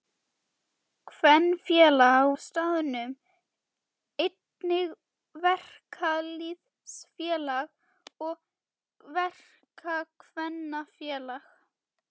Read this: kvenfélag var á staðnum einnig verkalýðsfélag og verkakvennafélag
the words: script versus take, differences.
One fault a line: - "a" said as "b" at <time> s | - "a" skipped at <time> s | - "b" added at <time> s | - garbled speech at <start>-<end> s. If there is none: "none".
- "var" skipped at 2.3 s